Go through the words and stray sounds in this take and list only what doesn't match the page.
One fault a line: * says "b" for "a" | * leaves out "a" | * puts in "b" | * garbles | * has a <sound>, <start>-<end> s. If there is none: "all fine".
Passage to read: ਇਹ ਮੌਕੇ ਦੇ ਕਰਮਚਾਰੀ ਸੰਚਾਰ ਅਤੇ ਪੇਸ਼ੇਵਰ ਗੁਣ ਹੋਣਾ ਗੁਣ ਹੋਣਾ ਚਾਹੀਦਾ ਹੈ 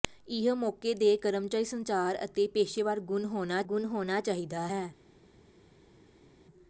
all fine